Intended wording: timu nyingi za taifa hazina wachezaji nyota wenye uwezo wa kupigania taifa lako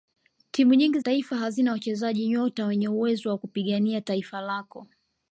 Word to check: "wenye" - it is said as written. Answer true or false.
true